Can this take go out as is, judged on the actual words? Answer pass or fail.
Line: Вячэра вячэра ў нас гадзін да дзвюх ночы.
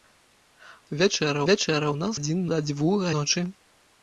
pass